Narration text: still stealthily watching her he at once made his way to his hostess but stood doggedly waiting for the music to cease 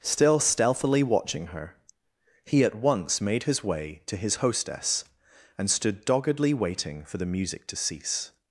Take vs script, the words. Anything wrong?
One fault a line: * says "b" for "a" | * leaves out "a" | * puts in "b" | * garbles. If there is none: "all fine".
* says "and" for "but"